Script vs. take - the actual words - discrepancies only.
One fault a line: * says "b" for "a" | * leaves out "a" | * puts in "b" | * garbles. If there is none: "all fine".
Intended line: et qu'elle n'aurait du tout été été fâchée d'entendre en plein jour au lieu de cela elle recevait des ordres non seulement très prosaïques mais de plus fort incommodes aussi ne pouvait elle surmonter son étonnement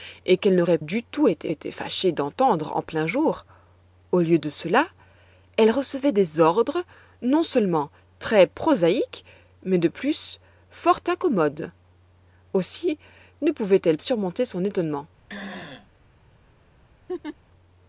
all fine